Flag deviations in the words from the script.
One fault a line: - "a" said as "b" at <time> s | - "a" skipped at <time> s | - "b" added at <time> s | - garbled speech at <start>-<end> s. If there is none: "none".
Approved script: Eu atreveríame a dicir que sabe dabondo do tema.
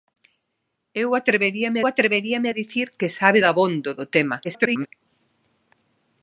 - "atreveríame" added at 1.9 s
- garbled speech at 4.4-4.9 s